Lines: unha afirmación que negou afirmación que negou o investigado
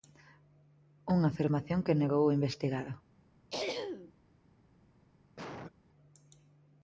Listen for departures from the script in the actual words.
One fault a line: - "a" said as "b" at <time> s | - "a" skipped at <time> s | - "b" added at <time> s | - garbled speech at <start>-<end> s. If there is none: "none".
- "afirmación que negou" skipped at 2.2 s